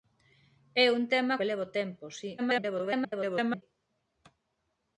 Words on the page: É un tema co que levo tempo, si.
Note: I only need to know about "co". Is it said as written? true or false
false